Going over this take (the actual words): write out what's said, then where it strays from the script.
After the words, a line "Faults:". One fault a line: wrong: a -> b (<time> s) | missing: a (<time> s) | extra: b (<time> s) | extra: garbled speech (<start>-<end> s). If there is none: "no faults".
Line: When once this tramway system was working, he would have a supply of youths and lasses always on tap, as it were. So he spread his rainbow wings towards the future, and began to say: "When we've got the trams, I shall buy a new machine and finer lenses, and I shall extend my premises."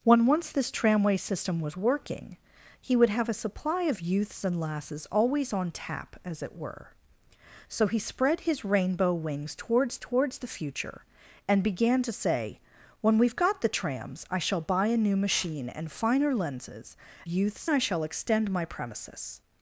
When once this tramway system was working, he would have a supply of youths and lasses always on tap, as it were. So he spread his rainbow wings towards towards the future, and began to say: "When we've got the trams, I shall buy a new machine and finer lenses, youths I shall extend my premises."
Faults:
extra: towards (10.0 s)
wrong: and -> youths (17.3 s)